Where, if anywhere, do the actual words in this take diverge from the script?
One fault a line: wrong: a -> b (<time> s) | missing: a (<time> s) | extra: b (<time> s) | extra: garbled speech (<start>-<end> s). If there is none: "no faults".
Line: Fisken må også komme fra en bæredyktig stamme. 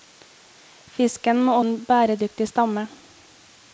missing: også komme fra (1.6 s)